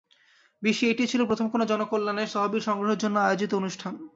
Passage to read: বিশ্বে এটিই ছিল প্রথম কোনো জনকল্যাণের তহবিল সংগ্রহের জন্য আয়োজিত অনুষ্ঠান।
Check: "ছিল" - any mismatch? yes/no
no